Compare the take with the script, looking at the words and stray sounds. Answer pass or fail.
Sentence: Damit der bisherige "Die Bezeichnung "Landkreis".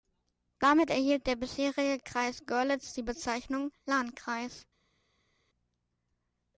fail